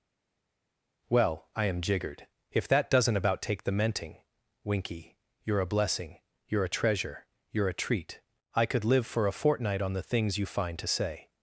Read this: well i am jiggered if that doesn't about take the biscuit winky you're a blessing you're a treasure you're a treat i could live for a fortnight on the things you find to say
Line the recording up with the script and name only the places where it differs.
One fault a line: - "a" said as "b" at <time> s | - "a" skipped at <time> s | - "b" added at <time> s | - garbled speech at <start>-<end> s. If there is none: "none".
- "biscuit" said as "menting" at 3.7 s